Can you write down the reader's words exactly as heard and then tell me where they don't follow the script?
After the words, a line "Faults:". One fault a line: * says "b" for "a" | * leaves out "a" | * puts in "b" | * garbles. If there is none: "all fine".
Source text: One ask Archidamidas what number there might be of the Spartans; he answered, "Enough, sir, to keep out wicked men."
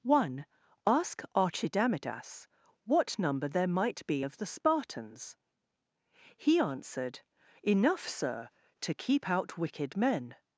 One ask Archidamidas what number there might be of the Spartans; he answered, "Enough, sir, to keep out wicked men."
Faults:
all fine